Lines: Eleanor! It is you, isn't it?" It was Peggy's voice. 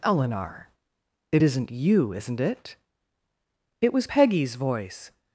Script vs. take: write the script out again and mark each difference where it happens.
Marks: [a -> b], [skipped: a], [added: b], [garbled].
Eleanor! It [is -> isn't] you, isn't it?" It was Peggy's voice.